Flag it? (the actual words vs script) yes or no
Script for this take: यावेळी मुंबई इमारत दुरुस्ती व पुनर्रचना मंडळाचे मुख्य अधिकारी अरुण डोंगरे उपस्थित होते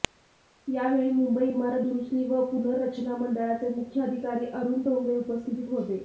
no